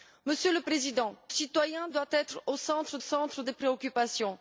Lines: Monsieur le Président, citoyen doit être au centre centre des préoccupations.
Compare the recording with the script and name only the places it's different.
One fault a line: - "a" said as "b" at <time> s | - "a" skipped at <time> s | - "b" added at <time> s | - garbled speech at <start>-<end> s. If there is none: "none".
none